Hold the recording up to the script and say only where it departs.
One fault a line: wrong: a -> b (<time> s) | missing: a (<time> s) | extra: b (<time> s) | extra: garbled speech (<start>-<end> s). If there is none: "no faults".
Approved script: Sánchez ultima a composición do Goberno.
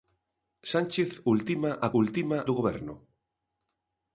wrong: composición -> ultima (2.0 s)